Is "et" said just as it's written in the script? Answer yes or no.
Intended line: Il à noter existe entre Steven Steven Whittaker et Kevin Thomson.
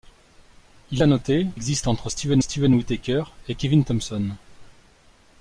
yes